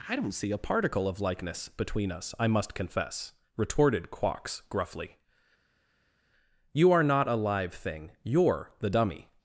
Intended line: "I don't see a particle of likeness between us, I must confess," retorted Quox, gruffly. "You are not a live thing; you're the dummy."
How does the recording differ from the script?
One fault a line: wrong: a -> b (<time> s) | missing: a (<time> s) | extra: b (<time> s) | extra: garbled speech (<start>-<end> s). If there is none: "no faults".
no faults